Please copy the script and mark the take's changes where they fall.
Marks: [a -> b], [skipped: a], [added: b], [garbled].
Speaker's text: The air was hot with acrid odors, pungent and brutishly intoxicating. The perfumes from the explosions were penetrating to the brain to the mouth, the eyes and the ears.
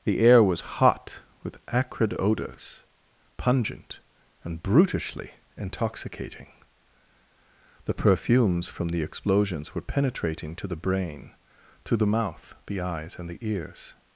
The air was hot with acrid odors, pungent and brutishly intoxicating. The perfumes from the explosions were penetrating to the brain to the mouth, the eyes and the ears.